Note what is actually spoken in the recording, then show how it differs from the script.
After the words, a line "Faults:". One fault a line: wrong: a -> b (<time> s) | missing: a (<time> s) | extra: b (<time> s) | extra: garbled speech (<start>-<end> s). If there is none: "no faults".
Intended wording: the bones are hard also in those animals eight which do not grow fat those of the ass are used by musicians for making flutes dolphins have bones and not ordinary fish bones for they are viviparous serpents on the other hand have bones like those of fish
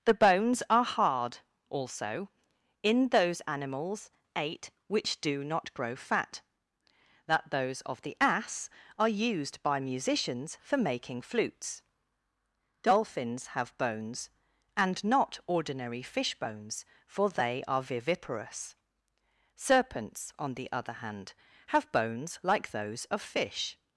the bones are hard also in those animals eight which do not grow fat that those of the ass are used by musicians for making flutes dolphins have bones and not ordinary fish bones for they are viviparous serpents on the other hand have bones like those of fish
Faults:
extra: that (7.3 s)